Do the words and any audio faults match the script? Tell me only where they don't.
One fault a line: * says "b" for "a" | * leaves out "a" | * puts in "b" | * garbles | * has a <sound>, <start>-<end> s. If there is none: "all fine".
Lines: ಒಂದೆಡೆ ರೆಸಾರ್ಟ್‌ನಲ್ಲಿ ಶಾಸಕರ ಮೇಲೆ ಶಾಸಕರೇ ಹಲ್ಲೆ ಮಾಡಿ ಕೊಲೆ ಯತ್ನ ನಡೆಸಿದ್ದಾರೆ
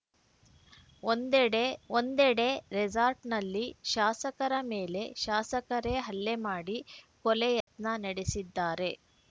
* puts in "ಒಂದೆಡೆ"
* has a dropout, 7.6-7.7 s